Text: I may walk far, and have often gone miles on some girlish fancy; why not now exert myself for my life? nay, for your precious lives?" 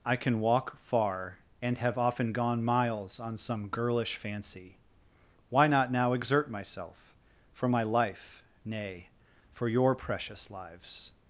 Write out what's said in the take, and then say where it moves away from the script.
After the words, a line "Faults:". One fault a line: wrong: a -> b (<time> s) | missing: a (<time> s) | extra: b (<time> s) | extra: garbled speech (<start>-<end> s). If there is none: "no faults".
I can walk far, and have often gone miles on some girlish fancy; why not now exert myself for my life? nay, for your precious lives?"
Faults:
wrong: may -> can (0.1 s)